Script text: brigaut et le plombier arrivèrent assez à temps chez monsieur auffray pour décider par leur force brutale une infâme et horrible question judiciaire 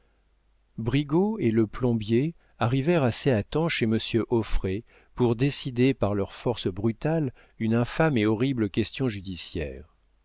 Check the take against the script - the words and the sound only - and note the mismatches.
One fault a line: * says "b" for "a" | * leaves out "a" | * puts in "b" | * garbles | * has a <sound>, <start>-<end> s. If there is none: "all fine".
all fine